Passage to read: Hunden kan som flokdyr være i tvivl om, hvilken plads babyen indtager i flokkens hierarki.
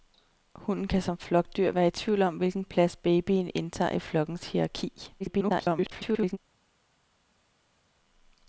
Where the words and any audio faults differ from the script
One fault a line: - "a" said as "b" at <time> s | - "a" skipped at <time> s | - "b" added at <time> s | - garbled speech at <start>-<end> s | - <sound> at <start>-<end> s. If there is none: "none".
- garbled speech at 5.2-6.4 s